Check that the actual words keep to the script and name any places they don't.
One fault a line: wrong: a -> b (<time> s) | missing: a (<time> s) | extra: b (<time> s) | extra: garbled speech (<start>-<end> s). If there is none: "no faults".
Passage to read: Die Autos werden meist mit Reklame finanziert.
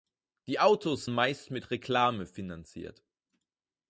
missing: werden (1.1 s)